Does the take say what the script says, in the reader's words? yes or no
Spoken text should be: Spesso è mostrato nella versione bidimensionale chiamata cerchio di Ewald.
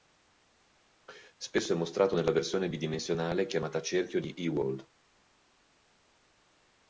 yes